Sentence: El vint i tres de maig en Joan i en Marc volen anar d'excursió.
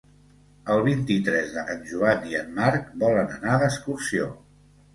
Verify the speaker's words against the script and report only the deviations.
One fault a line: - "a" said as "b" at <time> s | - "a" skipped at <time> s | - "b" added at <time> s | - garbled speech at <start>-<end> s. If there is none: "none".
- "maig" skipped at 1.6 s